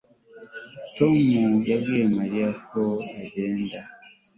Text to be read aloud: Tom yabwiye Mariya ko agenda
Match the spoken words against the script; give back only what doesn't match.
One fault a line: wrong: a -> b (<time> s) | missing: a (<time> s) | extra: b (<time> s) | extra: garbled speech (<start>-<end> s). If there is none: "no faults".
no faults